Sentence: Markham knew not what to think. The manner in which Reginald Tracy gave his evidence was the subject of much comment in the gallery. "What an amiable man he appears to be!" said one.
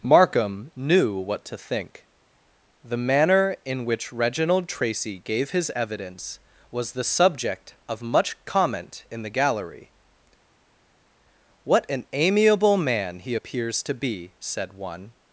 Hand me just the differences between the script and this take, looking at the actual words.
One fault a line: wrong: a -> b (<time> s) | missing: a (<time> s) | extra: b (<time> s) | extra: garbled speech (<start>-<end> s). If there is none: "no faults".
missing: not (1.2 s)